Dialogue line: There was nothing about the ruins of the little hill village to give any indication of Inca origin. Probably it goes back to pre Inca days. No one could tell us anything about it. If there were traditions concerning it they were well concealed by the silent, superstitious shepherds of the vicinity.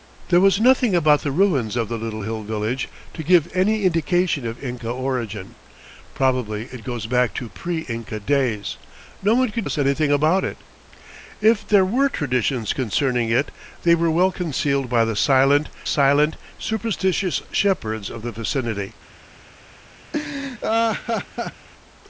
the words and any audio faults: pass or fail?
fail